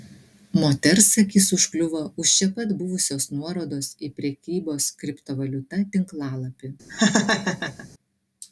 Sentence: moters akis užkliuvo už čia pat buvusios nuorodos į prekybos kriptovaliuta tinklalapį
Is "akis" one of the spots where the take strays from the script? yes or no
no